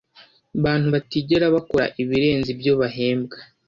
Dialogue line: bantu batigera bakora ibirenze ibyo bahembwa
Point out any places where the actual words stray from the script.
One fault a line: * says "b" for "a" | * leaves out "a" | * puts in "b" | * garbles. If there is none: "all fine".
all fine